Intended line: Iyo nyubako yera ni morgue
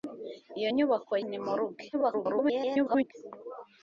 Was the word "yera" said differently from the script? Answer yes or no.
yes